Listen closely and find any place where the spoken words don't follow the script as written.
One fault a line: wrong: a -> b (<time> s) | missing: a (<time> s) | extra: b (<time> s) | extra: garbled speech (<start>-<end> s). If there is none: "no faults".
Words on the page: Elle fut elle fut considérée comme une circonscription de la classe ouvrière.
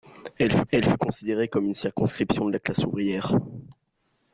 no faults